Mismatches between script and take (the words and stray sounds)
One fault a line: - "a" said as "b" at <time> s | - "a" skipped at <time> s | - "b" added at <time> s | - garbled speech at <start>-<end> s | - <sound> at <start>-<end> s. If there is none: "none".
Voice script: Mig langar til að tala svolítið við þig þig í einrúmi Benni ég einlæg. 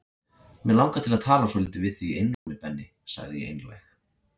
- "þig" skipped at 2.1 s
- dropout at 2.3-2.5 s
- "sagði" added at 3.2 s